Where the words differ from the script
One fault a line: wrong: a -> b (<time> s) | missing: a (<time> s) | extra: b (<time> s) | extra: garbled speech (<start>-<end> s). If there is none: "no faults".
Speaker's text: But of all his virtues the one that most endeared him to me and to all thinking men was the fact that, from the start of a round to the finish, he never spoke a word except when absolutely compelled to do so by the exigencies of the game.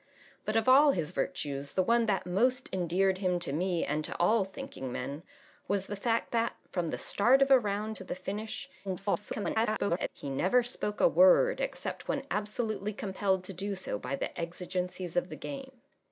extra: garbled speech (8.8-10.1 s)